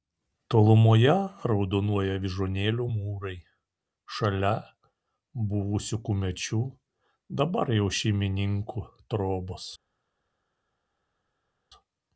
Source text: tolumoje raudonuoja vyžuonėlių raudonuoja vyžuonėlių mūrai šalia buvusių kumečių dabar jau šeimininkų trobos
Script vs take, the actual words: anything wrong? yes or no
yes